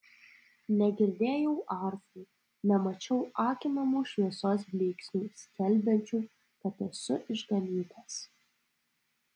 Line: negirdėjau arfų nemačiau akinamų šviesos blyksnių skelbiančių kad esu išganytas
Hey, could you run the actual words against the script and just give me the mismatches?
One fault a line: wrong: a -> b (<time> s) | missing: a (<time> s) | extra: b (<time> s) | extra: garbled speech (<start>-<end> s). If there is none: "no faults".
no faults